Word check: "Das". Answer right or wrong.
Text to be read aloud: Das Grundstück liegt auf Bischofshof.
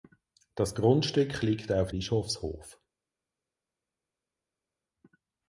right